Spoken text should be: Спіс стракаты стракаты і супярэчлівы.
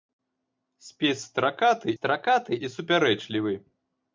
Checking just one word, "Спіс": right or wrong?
right